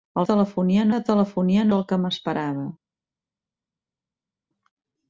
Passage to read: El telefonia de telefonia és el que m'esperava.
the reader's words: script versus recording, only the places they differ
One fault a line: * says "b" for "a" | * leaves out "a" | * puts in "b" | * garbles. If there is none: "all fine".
all fine